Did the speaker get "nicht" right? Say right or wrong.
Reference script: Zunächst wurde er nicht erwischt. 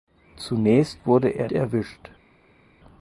wrong